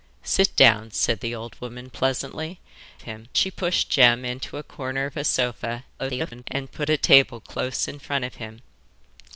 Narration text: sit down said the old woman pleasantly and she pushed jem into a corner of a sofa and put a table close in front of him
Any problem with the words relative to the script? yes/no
yes